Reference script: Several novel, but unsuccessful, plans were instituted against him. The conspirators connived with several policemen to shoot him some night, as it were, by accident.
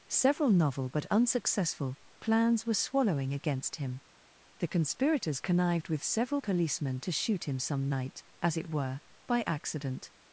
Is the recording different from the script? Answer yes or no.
yes